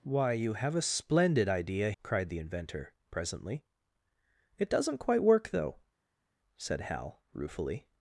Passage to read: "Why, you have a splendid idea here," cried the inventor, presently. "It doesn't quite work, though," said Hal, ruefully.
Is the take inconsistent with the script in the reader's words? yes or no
yes